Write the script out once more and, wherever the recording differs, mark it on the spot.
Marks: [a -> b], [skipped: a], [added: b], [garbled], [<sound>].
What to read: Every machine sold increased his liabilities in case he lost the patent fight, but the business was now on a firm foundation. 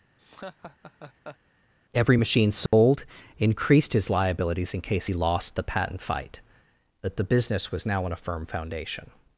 [laugh] Every machine sold [dropout] increased his liabilities in case he lost the patent fight, but the business was now on a firm foundation.